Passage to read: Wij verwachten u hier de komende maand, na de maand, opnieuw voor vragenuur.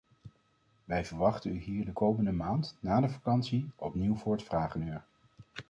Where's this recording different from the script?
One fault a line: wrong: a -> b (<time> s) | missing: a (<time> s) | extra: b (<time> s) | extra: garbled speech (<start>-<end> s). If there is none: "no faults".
wrong: maand -> vakantie (3.1 s)
extra: het (4.3 s)